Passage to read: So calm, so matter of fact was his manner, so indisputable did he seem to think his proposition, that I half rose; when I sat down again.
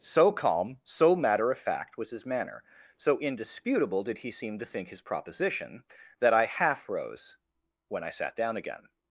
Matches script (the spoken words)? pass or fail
pass